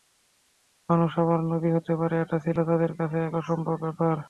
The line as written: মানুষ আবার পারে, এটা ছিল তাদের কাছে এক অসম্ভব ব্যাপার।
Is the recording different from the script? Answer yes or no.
yes